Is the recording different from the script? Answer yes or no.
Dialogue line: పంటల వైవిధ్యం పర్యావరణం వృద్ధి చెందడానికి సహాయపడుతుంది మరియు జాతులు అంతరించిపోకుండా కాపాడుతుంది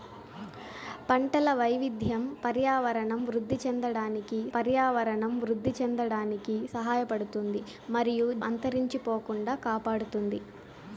yes